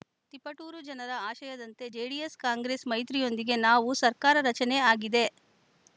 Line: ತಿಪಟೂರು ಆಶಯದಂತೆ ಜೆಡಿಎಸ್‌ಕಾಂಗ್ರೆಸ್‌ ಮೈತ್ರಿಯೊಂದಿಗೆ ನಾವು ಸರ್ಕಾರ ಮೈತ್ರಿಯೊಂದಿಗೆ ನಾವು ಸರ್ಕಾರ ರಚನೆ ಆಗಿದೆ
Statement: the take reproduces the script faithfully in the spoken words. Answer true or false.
false